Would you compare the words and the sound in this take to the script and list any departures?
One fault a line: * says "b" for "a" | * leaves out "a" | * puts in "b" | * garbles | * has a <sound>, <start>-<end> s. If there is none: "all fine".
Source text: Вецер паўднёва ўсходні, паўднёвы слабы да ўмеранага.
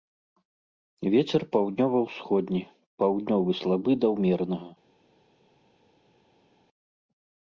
all fine